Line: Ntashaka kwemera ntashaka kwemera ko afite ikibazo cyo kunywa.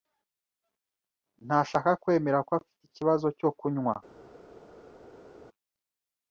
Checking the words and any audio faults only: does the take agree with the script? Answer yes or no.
no